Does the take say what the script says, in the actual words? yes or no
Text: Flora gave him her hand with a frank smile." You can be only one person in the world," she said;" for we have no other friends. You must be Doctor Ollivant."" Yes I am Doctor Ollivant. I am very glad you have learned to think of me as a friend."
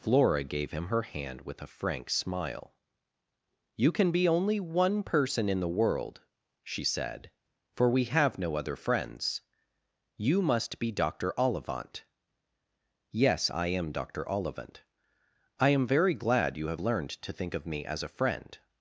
yes